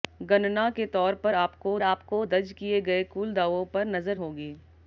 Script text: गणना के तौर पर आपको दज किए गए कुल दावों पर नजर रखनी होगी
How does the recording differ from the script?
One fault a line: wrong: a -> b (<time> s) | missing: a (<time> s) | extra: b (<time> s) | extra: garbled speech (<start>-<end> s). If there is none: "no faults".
extra: आपको (1.8 s)
missing: रखनी (4.2 s)